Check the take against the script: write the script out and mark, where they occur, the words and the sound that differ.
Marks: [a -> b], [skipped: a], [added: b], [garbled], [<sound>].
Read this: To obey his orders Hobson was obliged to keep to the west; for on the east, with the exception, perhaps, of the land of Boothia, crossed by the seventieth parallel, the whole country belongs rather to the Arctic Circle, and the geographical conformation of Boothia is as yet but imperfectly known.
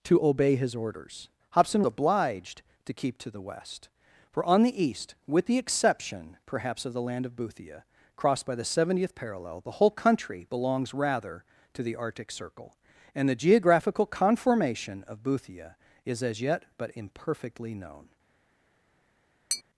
To obey his orders Hobson [skipped: was] obliged to keep to the west; for on the east, with the exception, perhaps, of the land of Boothia, crossed by the seventieth parallel, the whole country belongs rather to the Arctic Circle, and the geographical conformation of Boothia is as yet but imperfectly known. [tap]